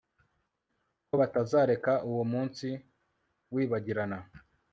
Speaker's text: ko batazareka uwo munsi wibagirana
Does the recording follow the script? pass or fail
pass